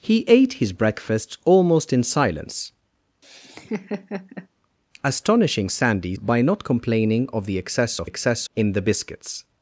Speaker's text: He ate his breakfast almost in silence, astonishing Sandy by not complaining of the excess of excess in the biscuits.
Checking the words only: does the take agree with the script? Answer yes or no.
yes